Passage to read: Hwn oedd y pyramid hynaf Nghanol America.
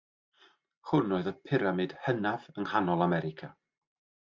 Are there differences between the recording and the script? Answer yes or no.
yes